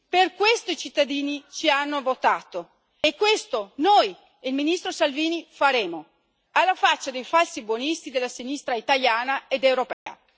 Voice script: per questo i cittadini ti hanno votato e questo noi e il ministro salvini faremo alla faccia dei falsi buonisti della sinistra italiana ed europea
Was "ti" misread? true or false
true